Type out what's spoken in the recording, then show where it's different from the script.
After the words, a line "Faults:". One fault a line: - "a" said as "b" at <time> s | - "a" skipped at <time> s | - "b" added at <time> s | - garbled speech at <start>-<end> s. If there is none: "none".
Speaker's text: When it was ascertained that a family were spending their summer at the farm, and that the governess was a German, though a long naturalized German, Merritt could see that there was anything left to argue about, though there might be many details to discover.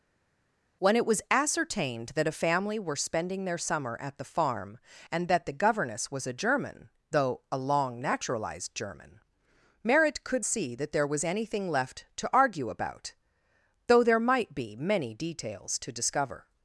When it was ascertained that a family were spending their summer at the farm, and that the governess was a German, though a long naturalized German, Merritt could see that there was anything left to argue about, though there might be many details to discover.
Faults:
none